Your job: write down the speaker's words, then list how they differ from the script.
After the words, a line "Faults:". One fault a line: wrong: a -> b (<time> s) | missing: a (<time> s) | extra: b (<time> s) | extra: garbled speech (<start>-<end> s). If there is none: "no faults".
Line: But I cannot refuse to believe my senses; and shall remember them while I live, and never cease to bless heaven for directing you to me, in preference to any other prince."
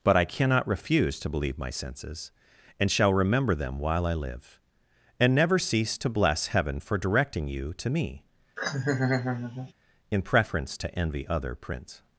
But I cannot refuse to believe my senses; and shall remember them while I live, and never cease to bless heaven for directing you to me, in preference to envy other prince."
Faults:
wrong: any -> envy (11.0 s)